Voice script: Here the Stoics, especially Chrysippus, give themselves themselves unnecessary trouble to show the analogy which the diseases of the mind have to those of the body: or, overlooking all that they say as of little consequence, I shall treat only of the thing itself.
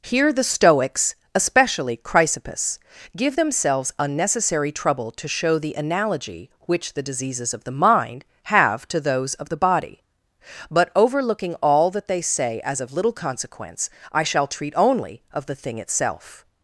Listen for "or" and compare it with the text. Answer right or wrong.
wrong